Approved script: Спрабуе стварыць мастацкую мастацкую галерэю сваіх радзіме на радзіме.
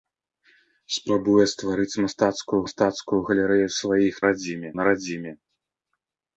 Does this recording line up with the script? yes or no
yes